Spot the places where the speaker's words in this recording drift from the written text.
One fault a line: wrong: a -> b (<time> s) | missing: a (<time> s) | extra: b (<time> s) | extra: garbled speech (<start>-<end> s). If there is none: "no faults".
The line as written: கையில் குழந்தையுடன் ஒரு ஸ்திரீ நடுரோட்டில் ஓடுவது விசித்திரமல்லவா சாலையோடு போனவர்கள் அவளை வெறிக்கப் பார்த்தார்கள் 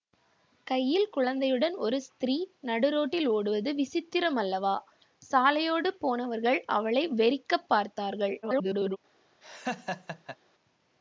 extra: garbled speech (8.4-9.0 s)